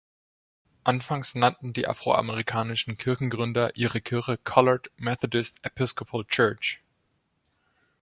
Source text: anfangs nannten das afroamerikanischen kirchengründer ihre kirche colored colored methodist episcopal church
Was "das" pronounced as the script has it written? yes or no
no